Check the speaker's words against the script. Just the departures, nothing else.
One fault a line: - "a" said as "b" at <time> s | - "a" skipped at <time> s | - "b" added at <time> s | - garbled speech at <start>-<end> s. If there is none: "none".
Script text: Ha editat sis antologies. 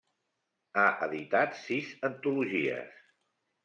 none